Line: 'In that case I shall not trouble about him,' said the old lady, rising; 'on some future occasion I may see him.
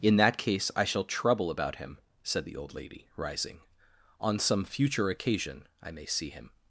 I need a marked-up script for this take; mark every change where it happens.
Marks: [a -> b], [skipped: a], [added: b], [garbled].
'In that case I shall [skipped: not] trouble about him,' said the old lady, rising; 'on some future occasion I may see him.